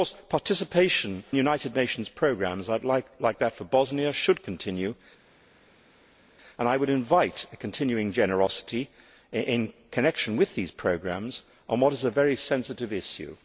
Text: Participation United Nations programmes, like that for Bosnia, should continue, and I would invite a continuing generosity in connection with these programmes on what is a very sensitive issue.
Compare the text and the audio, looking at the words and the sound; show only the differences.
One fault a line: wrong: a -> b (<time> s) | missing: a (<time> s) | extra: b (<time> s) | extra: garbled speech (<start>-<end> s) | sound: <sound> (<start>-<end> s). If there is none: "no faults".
no faults